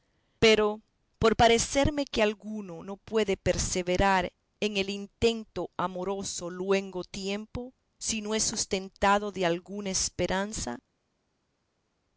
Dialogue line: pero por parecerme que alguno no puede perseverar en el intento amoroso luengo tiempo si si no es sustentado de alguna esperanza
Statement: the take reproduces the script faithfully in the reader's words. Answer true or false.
false